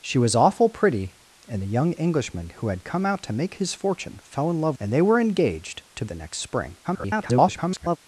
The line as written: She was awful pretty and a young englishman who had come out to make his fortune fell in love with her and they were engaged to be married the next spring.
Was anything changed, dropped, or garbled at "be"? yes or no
yes